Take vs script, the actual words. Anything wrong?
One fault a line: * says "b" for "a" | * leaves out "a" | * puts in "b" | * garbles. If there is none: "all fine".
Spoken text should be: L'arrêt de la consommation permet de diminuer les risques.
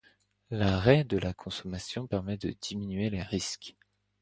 all fine